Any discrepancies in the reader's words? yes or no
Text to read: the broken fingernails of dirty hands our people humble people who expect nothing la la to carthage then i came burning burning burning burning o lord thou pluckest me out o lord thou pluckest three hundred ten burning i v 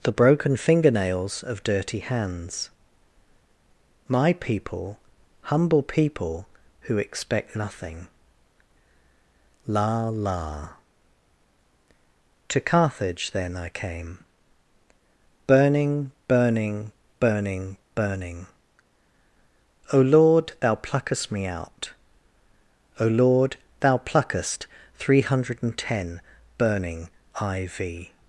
yes